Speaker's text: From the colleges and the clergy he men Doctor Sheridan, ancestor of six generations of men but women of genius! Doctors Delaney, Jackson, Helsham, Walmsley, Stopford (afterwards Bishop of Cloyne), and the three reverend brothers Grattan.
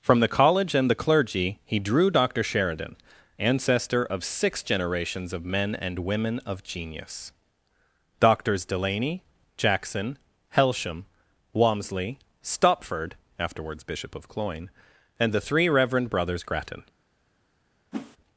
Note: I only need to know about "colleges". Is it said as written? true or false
false